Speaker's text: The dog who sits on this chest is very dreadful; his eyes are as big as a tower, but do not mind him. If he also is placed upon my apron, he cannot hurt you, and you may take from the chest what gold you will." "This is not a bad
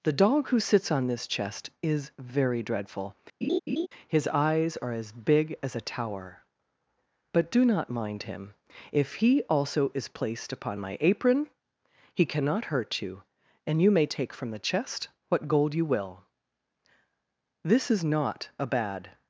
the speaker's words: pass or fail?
pass